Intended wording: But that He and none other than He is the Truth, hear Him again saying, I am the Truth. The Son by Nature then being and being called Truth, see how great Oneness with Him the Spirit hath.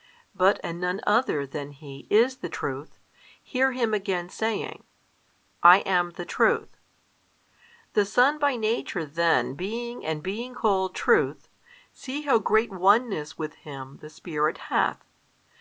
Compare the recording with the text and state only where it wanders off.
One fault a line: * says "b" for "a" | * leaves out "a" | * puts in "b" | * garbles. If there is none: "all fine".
* leaves out "that He"